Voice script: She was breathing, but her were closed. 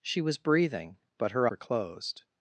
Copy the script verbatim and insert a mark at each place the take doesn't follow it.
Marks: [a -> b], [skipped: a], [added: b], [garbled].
She was breathing, but her were closed.